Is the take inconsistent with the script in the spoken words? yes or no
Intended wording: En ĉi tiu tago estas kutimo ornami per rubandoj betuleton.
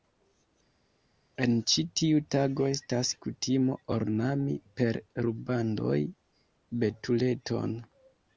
no